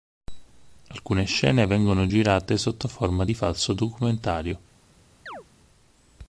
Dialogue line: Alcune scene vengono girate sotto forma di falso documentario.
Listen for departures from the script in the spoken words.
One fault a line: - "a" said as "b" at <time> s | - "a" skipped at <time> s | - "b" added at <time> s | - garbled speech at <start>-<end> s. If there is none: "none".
none